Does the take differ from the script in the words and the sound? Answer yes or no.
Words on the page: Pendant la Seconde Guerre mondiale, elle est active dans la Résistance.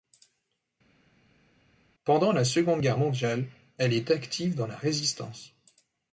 no